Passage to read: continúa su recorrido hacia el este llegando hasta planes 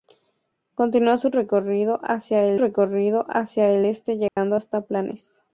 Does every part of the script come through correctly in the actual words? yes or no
no